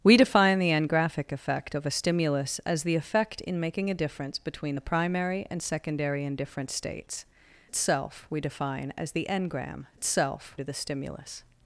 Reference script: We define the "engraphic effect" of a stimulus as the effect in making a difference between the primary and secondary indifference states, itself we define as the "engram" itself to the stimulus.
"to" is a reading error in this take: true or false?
false